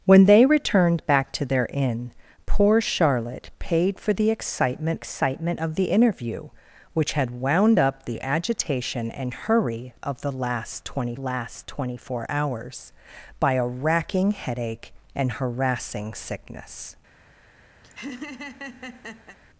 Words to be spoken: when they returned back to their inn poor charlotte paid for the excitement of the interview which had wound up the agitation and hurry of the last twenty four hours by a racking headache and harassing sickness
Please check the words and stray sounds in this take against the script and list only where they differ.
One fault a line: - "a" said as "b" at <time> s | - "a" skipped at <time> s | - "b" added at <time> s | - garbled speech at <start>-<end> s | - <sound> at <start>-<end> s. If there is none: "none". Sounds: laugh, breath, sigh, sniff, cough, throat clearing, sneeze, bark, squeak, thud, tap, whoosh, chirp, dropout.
- "excitement" added at 4.9 s
- "last twenty" added at 11.2 s
- laugh at 17.8-19.4 s